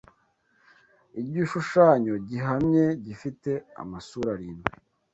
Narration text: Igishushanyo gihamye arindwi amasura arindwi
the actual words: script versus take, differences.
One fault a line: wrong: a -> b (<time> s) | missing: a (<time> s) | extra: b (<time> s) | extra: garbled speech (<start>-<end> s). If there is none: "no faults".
wrong: arindwi -> gifite (3.0 s)